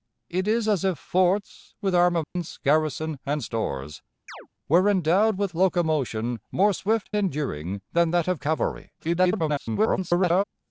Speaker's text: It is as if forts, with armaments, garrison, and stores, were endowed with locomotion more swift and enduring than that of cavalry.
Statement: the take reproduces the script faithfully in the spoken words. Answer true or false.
false